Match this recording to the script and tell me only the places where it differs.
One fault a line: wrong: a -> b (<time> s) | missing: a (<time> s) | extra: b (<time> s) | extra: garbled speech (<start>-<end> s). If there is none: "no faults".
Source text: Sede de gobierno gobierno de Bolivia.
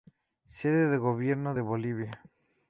missing: gobierno (1.5 s)